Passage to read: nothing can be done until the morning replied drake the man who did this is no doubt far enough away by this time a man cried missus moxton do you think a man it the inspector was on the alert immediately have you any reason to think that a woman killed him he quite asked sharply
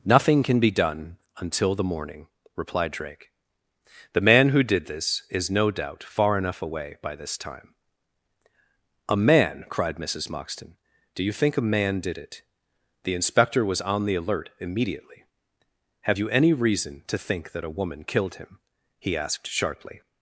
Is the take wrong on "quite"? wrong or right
wrong